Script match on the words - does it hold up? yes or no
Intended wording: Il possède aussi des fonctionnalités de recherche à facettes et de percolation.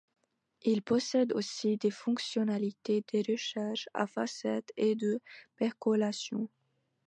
yes